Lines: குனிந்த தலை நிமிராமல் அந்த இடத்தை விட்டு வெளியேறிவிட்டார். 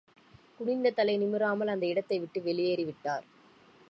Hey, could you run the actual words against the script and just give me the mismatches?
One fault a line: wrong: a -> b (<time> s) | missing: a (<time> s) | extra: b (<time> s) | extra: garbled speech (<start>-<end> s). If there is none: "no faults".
no faults